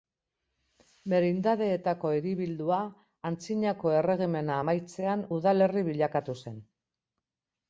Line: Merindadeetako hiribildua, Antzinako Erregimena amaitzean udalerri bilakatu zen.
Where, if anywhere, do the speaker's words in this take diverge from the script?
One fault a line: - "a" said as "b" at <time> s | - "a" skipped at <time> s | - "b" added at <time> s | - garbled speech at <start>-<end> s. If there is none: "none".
none